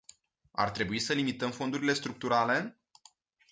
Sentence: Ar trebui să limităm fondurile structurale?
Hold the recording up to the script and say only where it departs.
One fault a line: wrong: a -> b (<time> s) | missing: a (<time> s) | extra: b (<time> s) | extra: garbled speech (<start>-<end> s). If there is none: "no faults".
no faults